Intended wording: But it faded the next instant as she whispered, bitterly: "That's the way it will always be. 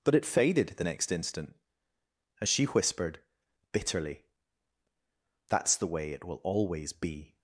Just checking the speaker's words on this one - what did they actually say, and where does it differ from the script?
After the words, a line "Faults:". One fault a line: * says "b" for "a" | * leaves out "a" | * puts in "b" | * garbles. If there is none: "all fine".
But it faded the next instant as she whispered, bitterly: "That's the way it will always be.
Faults:
all fine